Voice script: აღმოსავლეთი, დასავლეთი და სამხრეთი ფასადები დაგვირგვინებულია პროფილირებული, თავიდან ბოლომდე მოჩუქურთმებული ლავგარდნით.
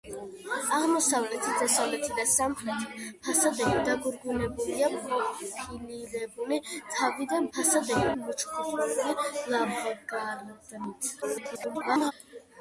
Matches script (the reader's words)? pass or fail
fail